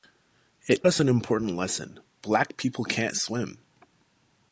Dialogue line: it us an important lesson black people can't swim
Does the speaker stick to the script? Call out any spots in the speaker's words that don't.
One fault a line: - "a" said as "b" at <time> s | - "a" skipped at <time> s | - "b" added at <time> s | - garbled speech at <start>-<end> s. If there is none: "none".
none